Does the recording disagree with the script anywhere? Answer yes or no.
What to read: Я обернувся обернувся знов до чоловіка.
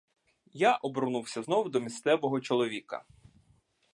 yes